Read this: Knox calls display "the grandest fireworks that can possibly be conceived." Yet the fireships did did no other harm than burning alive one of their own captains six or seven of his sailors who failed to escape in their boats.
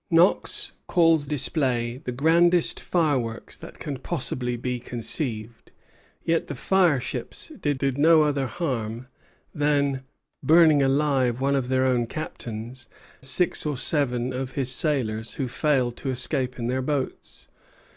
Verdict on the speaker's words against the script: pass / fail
pass